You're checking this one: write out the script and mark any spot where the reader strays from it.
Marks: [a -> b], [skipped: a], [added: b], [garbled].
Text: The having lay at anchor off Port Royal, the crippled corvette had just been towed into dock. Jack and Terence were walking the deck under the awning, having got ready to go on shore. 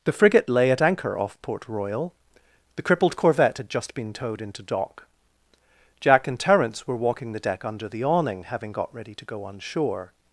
The [having -> frigate] lay at anchor off Port Royal, the crippled corvette had just been towed into dock. Jack and Terence were walking the deck under the awning, having got ready to go on shore.